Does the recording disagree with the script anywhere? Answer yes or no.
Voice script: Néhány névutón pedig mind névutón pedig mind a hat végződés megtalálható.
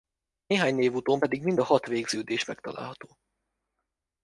yes